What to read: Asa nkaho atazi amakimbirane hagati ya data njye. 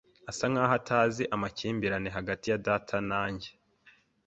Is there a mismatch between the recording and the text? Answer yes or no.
yes